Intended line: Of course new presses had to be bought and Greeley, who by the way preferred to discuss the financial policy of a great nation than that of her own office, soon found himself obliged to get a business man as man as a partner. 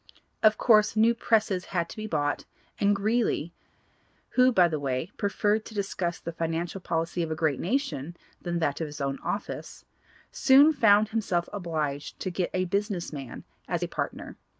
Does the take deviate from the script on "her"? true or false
true